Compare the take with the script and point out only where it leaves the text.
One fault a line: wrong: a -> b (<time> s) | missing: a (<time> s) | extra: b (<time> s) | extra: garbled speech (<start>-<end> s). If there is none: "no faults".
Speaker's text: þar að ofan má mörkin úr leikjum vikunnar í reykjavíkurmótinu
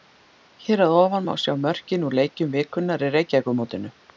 wrong: þar -> hér (0.7 s)
extra: sjá (1.4 s)